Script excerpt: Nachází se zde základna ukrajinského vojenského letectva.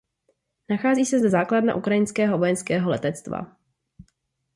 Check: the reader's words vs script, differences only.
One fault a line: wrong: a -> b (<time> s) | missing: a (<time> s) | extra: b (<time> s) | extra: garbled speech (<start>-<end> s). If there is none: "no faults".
no faults